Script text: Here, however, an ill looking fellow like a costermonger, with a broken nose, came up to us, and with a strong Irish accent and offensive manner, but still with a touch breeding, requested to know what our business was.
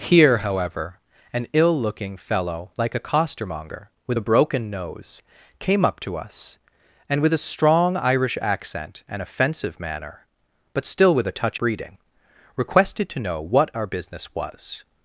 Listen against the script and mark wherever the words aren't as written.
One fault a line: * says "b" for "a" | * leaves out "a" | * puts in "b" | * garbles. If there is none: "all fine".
all fine